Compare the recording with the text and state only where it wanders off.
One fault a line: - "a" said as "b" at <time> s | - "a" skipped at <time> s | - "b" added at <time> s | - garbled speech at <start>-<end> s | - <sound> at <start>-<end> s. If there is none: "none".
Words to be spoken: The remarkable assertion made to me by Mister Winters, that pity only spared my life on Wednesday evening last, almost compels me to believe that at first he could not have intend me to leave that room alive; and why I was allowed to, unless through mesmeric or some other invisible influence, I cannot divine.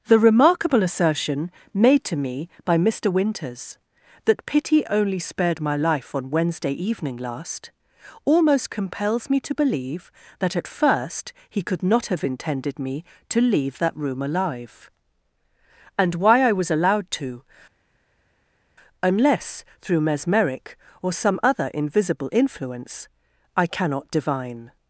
- "intend" said as "intended" at 12.2 s